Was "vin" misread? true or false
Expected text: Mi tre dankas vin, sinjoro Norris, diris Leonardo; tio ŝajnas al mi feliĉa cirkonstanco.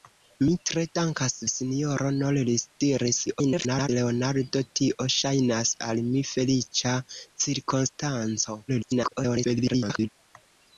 true